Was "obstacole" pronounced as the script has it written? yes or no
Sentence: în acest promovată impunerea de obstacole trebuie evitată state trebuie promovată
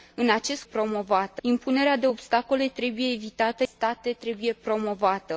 yes